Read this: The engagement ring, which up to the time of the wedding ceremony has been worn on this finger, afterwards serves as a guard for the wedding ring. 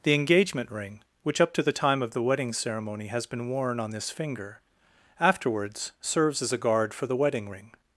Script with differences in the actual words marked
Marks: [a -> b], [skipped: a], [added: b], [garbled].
The engagement ring, which up to the time of the wedding ceremony has been worn on this finger, afterwards serves as a guard for the wedding ring.